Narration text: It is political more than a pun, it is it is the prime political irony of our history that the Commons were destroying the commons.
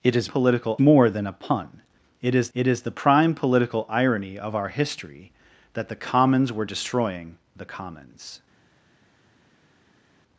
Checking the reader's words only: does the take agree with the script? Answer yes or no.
yes